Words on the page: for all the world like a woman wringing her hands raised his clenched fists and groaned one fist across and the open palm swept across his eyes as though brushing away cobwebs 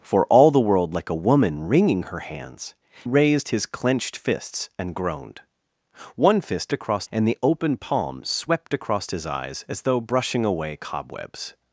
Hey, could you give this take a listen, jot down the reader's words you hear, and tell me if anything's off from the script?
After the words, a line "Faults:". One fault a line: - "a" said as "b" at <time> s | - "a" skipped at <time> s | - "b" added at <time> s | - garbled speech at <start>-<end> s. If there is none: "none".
for all the world like a woman wringing her hands raised his clenched fists and groaned one fist across and the open palm swept across his eyes as though brushing away cobwebs
Faults:
none